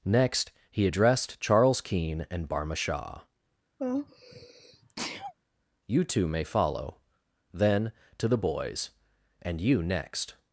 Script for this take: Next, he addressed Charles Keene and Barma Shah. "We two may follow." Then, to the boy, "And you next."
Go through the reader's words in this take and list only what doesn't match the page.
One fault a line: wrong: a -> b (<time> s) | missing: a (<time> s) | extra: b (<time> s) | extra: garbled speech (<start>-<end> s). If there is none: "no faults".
wrong: We -> You (5.9 s)
wrong: boy -> boys (8.4 s)